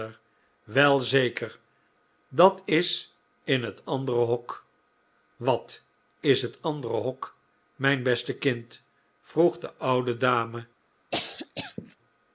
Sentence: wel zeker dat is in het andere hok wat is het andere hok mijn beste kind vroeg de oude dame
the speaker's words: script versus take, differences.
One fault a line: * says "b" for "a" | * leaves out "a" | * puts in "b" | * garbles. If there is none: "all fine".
all fine